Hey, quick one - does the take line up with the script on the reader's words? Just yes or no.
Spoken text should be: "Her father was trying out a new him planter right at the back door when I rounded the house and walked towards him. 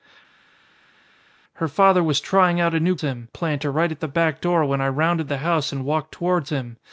yes